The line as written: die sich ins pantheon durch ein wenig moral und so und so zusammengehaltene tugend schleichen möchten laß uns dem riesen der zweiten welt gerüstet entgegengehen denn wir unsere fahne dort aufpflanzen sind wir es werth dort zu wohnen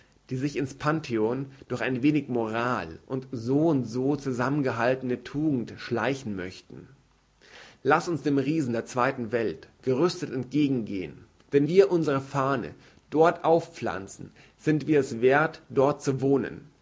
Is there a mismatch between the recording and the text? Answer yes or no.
no